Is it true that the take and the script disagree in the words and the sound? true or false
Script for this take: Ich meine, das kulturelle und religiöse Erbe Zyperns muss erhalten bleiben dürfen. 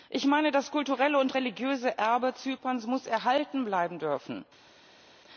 false